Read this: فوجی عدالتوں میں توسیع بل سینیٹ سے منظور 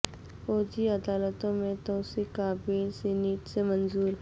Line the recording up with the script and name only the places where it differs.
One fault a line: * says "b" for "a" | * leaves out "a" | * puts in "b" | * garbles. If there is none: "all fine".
* puts in "کا"